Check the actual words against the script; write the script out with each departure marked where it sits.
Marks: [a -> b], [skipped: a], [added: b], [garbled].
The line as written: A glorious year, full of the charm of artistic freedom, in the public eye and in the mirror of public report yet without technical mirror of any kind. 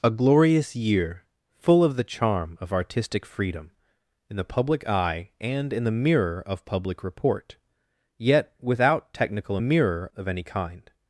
A glorious year, full of the charm of artistic freedom, in the public eye and in the mirror of public report yet without technical mirror of any kind.